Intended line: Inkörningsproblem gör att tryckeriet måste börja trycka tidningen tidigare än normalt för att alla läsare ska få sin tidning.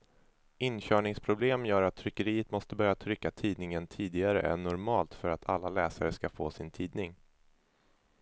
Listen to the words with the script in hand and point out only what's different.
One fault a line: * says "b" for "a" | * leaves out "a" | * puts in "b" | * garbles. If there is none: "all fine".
all fine